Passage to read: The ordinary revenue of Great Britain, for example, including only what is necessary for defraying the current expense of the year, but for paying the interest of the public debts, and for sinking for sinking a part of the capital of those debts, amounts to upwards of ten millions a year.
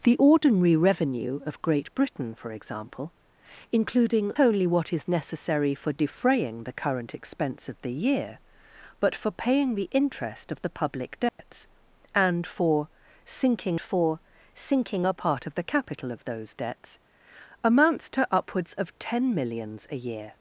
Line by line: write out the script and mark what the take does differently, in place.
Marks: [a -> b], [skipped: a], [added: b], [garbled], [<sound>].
The ordinary revenue of Great Britain, for example, including only what is necessary for defraying the current expense of the year, but for paying the interest of the public debts, [dropout] and for sinking for sinking a part of the capital of those debts, amounts to upwards of ten millions a year.